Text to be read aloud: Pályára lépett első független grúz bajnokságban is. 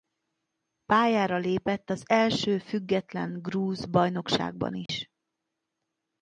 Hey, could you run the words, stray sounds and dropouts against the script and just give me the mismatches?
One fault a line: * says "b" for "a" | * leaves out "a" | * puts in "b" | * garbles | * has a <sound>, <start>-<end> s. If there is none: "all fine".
* puts in "az"
* has a dropout, 4.9-4.9 s